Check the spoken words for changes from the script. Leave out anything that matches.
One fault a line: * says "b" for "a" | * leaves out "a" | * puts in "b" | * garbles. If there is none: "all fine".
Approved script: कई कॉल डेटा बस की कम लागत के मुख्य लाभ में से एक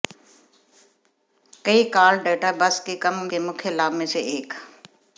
* leaves out "लागत"